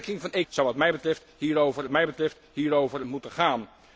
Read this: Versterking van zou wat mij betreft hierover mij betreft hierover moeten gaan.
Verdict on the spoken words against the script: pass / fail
pass